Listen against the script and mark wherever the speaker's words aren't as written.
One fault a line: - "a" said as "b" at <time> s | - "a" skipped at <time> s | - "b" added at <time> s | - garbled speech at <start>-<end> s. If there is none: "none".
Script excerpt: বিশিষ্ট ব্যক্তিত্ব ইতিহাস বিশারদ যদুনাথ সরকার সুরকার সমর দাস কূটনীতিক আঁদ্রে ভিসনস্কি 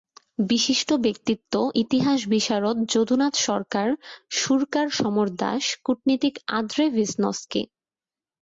none